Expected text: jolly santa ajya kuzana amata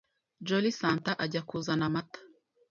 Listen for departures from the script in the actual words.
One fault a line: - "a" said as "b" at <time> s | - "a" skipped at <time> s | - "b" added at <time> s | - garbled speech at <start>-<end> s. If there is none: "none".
none